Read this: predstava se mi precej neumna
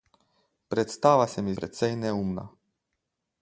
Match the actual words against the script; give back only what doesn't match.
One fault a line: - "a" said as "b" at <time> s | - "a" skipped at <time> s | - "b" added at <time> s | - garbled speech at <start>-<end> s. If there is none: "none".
none